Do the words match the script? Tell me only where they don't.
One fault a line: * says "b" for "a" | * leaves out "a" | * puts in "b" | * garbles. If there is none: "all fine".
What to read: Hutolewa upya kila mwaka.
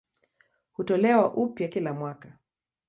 all fine